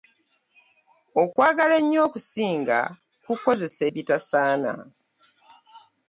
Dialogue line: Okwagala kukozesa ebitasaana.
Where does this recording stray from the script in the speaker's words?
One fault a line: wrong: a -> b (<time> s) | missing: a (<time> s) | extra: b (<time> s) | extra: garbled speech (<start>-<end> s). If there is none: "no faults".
extra: ennyo okusinga (1.8 s)